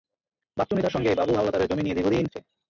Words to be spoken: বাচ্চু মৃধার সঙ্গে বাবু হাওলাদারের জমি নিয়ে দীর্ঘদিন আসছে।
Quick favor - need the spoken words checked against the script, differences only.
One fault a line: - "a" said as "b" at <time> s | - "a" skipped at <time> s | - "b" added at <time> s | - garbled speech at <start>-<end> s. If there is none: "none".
none